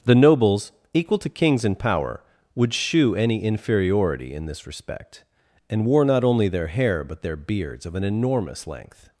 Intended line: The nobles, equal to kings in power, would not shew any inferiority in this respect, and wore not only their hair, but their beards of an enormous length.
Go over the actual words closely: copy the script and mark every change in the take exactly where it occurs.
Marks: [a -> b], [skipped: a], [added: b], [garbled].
The nobles, equal to kings in power, would [skipped: not] shew any inferiority in this respect, and wore not only their hair, but their beards of an enormous length.